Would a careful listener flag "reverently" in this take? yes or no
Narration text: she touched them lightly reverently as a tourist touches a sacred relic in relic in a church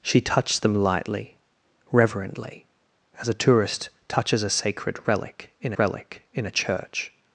no